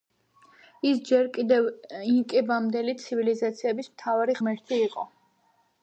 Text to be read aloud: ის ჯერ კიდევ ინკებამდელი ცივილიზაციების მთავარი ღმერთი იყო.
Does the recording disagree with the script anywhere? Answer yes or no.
no